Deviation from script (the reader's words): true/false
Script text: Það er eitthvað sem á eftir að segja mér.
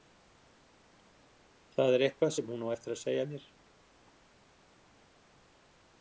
true